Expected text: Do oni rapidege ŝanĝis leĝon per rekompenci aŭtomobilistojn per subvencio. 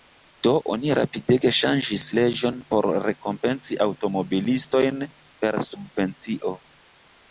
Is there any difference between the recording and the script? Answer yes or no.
yes